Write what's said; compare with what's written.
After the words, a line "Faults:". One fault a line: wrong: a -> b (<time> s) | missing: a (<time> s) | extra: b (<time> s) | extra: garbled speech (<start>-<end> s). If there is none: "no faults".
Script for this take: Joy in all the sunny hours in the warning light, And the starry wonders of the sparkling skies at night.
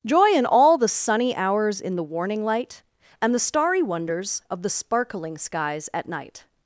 Joy in all the sunny hours in the warning light, And the starry wonders of the sparkling skies at night.
Faults:
no faults